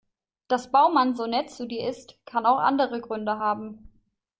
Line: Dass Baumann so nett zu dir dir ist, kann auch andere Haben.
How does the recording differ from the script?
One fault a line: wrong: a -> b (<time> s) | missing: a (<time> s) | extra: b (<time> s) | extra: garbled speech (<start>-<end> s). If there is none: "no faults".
missing: dir (1.9 s)
extra: Gründe (3.0 s)